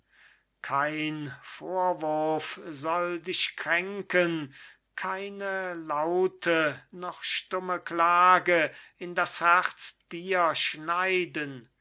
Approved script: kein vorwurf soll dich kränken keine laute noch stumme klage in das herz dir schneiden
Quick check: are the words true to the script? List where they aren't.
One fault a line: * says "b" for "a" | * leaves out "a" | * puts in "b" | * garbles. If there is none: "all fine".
all fine